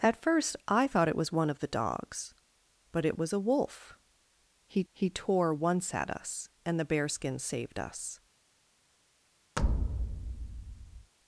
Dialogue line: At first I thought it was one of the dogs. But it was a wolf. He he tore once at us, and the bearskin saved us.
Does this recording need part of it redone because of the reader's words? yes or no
no